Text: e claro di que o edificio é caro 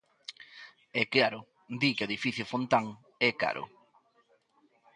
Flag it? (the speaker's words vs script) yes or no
yes